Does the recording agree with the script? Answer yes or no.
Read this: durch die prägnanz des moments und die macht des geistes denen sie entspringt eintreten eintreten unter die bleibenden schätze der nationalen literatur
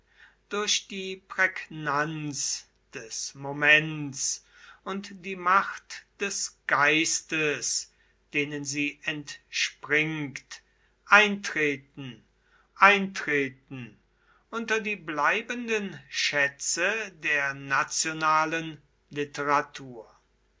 yes